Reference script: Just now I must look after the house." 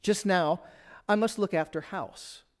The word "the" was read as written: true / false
false